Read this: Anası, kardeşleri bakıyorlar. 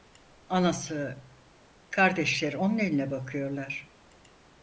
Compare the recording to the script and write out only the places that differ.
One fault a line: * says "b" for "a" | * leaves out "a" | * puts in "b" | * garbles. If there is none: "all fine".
* puts in "onun eline"